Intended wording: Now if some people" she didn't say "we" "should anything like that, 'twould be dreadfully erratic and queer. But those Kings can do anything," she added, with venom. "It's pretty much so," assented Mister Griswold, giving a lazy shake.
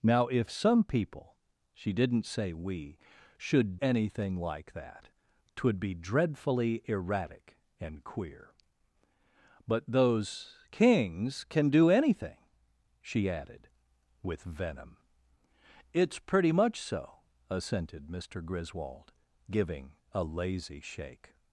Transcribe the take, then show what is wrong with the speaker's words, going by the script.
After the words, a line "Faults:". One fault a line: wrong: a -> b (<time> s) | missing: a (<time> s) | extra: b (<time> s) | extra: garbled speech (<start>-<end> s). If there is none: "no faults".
Now if some people" she didn't say "we" "should anything like that, 'twould be dreadfully erratic and queer. But those Kings can do anything," she added, with venom. "It's pretty much so," assented Mister Griswold, giving a lazy shake.
Faults:
no faults